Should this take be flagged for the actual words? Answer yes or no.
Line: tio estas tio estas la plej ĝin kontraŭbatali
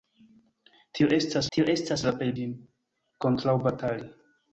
no